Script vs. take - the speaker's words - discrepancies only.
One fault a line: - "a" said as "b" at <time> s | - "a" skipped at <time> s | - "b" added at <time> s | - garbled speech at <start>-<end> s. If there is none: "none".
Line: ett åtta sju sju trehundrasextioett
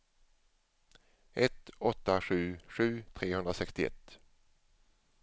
none